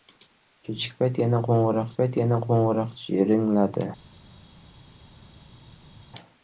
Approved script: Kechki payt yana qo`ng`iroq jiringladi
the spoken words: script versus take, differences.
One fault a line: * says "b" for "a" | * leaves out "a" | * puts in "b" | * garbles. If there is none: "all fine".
* puts in "payt yana qo`ng`iroq"